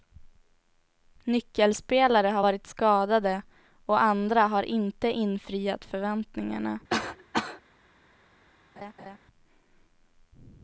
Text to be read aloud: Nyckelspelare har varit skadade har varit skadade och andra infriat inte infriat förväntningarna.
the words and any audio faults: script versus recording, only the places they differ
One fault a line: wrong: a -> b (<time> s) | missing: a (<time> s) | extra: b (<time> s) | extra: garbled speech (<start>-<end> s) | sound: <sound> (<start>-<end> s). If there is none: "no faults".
missing: har varit skadade (3.4 s)
wrong: infriat -> har (4.4 s)
sound: cough (6.9-7.6 s)
sound: laugh (8.8-9.2 s)